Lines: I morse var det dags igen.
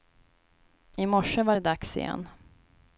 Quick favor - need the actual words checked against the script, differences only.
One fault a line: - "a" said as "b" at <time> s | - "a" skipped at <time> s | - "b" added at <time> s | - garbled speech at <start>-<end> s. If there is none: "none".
none